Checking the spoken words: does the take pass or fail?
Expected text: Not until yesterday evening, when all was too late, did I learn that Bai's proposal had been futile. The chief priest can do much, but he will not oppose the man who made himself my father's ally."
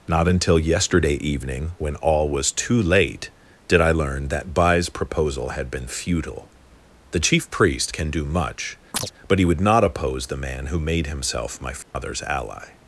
fail